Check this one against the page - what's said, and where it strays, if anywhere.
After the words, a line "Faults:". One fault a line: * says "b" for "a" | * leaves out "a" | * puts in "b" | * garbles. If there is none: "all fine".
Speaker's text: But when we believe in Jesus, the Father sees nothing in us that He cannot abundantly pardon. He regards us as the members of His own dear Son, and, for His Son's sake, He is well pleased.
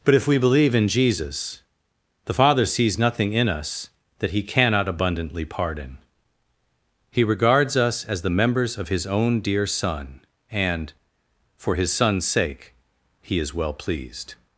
But if we believe in Jesus, the Father sees nothing in us that He cannot abundantly pardon. He regards us as the members of His own dear Son, and, for His Son's sake, He is well pleased.
Faults:
* says "if" for "when"